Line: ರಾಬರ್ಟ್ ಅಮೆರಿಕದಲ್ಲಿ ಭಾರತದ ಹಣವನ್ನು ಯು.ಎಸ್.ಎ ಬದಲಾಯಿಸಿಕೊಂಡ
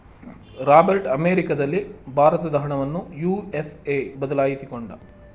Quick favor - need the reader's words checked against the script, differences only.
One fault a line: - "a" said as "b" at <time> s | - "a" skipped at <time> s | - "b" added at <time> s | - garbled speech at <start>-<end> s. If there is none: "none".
none